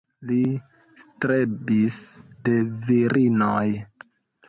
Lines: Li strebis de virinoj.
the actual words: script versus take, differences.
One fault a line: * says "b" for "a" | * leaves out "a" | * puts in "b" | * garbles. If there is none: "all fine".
all fine